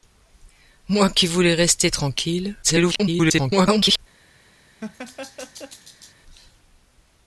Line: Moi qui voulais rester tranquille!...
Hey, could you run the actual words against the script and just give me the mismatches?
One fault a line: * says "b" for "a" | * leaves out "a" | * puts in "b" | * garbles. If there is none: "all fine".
* garbles